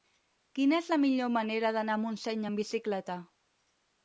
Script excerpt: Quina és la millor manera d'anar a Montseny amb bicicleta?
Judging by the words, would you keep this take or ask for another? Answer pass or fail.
pass